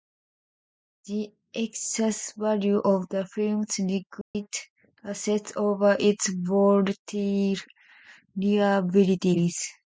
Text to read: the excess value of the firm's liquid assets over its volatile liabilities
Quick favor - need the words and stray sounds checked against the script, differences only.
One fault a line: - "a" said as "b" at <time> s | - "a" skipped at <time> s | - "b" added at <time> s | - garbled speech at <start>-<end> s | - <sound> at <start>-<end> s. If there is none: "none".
- dropout at 4.2-4.3 s